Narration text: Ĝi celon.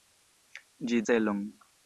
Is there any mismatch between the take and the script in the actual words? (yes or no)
no